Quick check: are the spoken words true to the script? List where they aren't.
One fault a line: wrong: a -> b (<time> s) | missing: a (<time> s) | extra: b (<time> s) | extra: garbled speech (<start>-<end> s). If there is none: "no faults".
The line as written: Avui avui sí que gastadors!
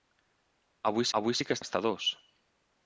no faults